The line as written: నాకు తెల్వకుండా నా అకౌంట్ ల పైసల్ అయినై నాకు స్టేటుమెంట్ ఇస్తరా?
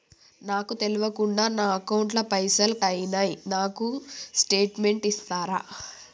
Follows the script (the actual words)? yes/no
yes